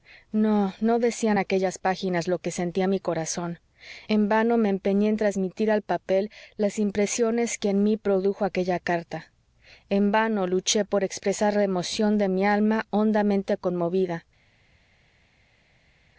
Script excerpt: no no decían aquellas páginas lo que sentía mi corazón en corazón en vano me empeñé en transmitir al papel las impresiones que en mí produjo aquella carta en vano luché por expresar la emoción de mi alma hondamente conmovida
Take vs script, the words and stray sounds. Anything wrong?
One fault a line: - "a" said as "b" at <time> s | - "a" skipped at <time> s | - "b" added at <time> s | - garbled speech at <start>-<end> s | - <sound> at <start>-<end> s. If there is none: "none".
- "corazón en" skipped at 4.3 s